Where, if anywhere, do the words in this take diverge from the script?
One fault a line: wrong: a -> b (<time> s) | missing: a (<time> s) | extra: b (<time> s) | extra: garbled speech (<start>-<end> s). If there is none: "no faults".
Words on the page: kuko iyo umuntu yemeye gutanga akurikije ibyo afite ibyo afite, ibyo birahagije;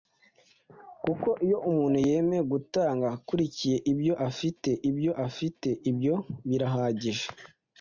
no faults